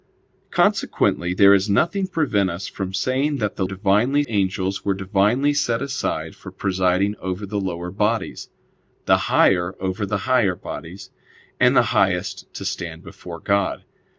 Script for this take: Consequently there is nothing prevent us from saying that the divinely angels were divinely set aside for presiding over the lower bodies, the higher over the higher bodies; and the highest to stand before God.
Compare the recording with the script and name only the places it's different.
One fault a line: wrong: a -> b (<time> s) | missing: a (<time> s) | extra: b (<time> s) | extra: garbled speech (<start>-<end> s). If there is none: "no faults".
no faults